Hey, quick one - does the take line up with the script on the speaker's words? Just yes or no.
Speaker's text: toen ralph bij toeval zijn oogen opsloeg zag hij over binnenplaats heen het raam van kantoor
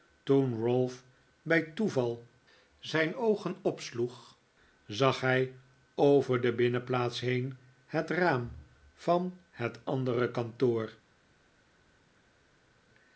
no